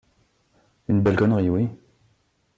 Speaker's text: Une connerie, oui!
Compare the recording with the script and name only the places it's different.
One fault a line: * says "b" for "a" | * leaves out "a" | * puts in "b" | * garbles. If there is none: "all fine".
* puts in "belle"